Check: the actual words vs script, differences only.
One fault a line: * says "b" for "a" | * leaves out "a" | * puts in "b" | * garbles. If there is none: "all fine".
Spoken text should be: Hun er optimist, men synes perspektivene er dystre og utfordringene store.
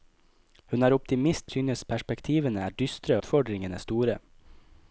* leaves out "men"
* leaves out "og"